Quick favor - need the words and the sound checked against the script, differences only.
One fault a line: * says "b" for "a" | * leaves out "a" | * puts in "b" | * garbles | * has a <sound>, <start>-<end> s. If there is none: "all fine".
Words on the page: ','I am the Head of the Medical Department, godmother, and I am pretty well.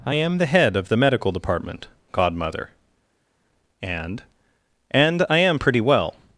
* puts in "and"